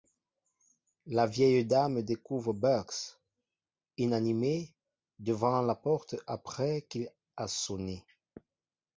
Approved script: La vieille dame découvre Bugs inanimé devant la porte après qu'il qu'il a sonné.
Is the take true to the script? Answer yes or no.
no